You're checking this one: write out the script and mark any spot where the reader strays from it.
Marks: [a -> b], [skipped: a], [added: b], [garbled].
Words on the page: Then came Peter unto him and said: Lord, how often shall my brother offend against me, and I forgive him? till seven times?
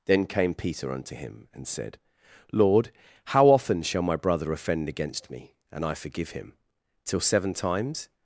Then came Peter unto him and said: Lord, how often shall my brother offend against me, and I forgive him? till seven times?